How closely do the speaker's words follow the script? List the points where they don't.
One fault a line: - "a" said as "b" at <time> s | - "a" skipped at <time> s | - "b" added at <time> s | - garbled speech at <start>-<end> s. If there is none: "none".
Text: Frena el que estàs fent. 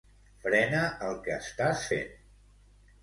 none